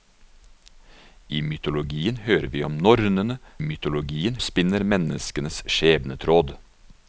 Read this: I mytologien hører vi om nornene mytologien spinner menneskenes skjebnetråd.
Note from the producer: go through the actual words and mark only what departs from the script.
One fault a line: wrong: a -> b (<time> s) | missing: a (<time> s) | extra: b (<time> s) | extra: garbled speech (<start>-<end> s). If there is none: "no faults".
no faults